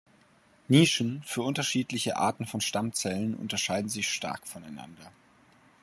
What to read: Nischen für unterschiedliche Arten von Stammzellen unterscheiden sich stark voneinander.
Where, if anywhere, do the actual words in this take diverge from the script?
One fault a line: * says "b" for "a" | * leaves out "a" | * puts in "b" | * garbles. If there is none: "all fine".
all fine